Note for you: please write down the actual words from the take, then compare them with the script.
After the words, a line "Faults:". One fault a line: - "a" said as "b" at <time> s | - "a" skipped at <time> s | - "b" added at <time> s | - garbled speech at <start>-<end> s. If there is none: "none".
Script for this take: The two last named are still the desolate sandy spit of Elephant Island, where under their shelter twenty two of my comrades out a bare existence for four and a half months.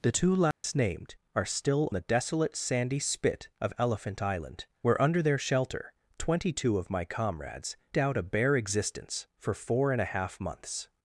The two last named are still the desolate sandy spit of Elephant Island, where under their shelter twenty two of my comrades out a bare existence for four and a half months.
Faults:
none